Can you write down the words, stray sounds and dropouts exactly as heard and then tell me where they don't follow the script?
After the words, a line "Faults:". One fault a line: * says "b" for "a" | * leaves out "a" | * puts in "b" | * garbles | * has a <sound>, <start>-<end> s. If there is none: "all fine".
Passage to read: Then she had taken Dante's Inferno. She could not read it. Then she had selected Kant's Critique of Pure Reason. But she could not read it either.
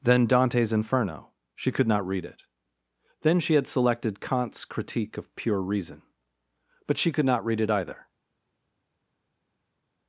Then Dante's Inferno. She could not read it. Then she had selected Kant's Critique of Pure Reason. But she could not read it either.
Faults:
* leaves out "she had taken"